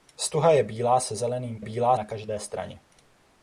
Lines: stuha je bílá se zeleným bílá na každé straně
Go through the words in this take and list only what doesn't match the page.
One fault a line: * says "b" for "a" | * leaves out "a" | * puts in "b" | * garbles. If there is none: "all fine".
all fine